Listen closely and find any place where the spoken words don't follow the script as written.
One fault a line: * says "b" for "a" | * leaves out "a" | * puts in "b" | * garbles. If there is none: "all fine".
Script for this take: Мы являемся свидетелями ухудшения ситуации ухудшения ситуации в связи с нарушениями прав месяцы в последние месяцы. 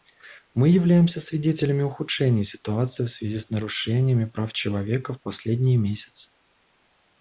* leaves out "ухудшения ситуации"
* says "человека" for "месяцы"